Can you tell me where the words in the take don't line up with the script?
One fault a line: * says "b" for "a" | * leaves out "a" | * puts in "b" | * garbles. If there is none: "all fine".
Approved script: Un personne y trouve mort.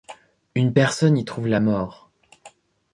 * says "Une" for "Un"
* puts in "la"